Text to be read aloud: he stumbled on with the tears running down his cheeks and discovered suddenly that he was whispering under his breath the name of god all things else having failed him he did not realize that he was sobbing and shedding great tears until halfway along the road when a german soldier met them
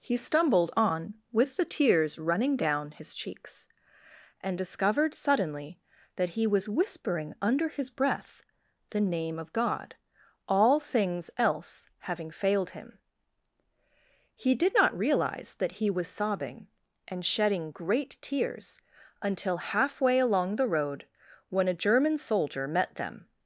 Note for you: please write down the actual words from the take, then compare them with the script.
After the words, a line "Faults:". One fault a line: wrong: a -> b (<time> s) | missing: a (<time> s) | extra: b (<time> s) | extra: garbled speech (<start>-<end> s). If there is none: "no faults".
he stumbled on with the tears running down his cheeks and discovered suddenly that he was whispering under his breath the name of god all things else having failed him he did not realize that he was sobbing and shedding great tears until halfway along the road when a german soldier met them
Faults:
no faults